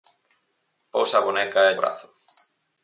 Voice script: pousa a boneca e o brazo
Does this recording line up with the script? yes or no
yes